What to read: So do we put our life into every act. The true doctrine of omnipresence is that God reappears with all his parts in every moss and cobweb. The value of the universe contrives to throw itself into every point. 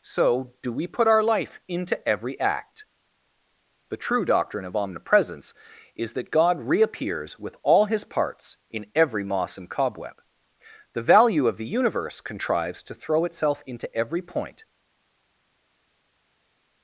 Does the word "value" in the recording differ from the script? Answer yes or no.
no